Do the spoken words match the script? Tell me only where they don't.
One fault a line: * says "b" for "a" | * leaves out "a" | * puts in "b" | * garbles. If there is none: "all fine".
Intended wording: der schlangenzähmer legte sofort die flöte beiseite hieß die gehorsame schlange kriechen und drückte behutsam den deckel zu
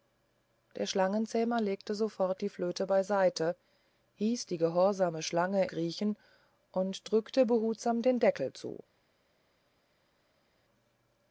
all fine